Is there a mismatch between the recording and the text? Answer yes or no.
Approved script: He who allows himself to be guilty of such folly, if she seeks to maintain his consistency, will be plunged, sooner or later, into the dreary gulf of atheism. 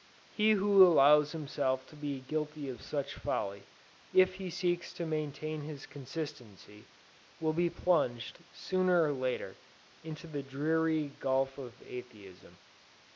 yes